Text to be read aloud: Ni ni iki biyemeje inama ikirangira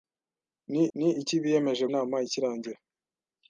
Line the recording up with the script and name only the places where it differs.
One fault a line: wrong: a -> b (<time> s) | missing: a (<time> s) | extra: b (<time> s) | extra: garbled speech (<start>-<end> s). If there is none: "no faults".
no faults